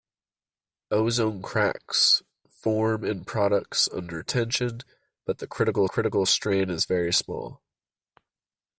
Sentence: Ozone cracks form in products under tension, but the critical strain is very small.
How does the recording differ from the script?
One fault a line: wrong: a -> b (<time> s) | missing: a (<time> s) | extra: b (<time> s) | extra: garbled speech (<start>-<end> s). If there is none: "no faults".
extra: critical (5.8 s)